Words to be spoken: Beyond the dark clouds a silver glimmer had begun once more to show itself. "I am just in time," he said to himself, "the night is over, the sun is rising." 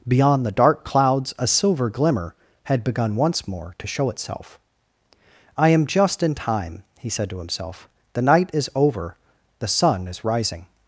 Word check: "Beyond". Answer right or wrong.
right